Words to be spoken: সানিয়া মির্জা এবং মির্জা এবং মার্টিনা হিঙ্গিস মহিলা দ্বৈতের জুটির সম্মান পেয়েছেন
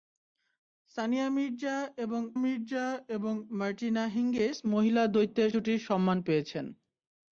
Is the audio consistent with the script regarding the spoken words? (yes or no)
yes